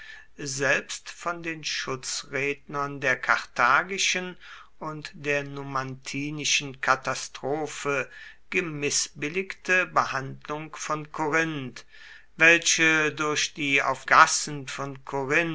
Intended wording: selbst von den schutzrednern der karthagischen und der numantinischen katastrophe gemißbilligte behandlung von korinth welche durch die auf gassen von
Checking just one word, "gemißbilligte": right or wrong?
right